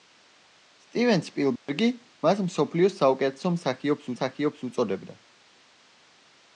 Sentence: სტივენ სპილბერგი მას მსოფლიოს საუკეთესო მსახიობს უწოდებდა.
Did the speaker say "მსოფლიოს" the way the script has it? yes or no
yes